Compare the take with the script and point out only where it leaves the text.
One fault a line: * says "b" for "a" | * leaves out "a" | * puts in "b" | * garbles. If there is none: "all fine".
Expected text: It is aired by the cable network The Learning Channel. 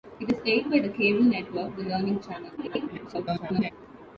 * garbles